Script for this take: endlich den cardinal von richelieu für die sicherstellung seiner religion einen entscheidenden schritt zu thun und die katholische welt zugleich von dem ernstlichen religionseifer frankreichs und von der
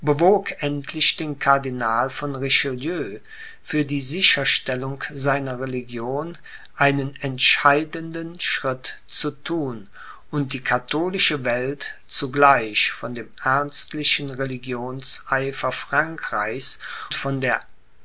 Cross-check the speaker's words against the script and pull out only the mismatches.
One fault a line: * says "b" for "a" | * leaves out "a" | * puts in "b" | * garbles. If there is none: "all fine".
* leaves out "und"